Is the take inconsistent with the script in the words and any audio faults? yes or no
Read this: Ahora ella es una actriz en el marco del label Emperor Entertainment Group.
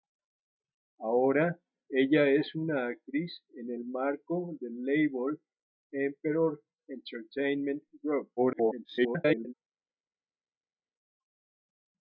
yes